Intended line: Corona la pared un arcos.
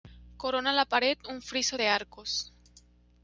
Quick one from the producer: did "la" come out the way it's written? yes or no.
yes